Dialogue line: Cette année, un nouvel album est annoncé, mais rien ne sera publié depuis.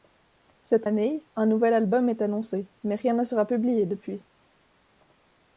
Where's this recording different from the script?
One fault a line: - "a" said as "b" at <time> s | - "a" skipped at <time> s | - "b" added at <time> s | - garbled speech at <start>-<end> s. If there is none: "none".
none